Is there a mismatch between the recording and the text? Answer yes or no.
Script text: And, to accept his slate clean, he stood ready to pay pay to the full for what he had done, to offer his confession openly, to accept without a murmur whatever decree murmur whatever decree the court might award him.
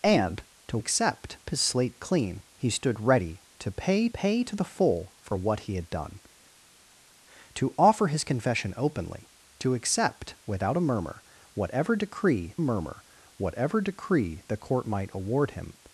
no